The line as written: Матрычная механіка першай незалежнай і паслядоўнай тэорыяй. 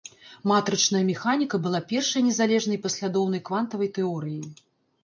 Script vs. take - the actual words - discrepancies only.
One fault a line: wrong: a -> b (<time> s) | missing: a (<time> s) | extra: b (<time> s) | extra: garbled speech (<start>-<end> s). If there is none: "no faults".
extra: была (1.7 s)
extra: квантавай (3.5 s)